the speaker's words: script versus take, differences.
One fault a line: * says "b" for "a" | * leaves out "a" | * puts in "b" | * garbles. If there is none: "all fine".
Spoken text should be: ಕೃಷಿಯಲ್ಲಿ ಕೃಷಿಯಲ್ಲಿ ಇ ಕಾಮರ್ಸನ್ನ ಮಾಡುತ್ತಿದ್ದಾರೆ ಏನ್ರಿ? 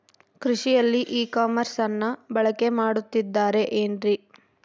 * leaves out "ಕೃಷಿಯಲ್ಲಿ"
* puts in "ಬಳಕೆ"